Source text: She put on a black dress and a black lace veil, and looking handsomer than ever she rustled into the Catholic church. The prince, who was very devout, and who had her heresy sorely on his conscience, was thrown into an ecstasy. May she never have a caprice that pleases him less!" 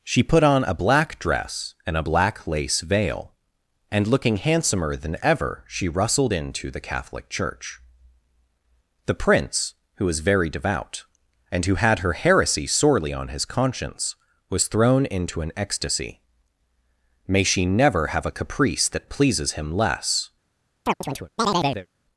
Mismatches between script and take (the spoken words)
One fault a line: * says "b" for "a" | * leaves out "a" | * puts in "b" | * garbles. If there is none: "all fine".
all fine